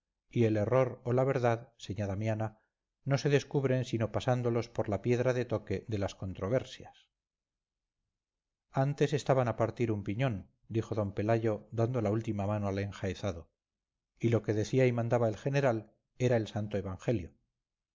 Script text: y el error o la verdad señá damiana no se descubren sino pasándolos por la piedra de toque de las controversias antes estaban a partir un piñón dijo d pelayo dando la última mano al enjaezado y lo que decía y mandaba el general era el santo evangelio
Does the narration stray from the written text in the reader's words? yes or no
no